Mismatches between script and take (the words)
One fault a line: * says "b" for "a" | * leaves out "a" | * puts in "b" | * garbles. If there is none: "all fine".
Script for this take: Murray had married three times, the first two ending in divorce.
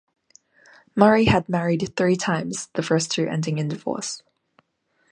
all fine